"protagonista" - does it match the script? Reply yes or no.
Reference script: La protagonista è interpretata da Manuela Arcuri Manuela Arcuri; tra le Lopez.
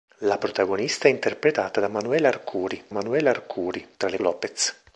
yes